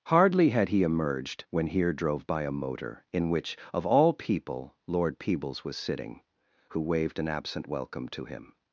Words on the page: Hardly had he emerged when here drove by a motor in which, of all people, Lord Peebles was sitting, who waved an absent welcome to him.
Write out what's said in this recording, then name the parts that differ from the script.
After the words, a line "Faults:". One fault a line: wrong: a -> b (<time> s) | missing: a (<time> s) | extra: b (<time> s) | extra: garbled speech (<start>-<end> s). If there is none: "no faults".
Hardly had he emerged when here drove by a motor in which, of all people, Lord Peebles was sitting, who waved an absent welcome to him.
Faults:
no faults